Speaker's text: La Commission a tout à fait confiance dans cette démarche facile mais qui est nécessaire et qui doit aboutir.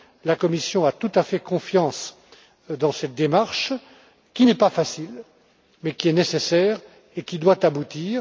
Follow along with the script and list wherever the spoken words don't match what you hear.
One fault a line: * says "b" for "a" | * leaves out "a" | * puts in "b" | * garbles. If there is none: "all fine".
* puts in "qui n'est pas"